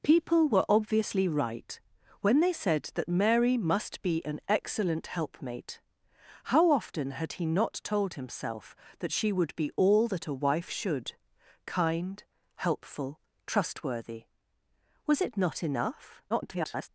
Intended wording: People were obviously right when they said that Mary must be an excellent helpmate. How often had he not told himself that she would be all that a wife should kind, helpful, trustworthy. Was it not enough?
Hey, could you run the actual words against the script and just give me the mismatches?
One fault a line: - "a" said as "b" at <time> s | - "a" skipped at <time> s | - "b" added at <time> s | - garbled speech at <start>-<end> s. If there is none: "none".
- garbled speech at 16.3-16.9 s